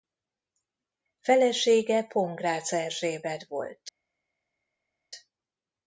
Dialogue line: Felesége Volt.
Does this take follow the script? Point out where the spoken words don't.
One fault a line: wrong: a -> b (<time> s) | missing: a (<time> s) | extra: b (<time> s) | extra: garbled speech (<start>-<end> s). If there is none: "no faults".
extra: Pongrácz Erzsébet (2.0 s)